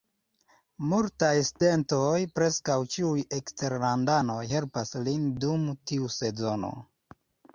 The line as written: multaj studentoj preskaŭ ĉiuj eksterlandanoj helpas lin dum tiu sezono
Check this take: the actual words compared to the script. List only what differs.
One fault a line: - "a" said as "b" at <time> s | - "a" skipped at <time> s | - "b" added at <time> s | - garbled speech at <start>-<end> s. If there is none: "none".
none